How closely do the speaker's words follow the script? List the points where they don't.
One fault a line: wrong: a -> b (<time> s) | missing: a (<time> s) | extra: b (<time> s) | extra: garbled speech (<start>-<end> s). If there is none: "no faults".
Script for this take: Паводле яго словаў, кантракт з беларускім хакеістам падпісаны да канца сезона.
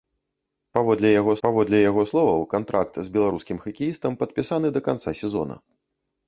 extra: паводле яго (1.5 s)